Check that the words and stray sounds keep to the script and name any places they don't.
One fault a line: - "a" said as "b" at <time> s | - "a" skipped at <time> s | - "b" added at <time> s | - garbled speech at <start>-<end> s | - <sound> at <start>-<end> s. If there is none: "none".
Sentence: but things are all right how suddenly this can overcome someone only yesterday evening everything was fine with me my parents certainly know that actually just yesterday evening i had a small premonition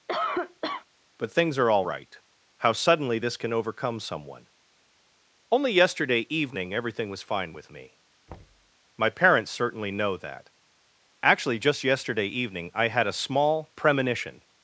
- cough at 0.1-0.8 s
- thud at 8.3-8.7 s